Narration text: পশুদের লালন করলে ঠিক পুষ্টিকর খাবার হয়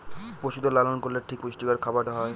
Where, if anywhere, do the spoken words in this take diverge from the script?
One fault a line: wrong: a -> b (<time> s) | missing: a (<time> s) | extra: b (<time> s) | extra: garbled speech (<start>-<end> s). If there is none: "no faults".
no faults